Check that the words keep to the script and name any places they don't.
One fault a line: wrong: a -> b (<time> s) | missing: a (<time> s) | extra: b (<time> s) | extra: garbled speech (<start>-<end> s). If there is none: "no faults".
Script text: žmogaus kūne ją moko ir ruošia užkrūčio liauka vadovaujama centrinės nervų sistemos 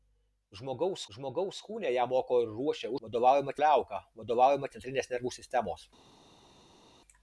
extra: žmogaus (1.2 s)
wrong: užkrūčio -> vadovaujama (3.1 s)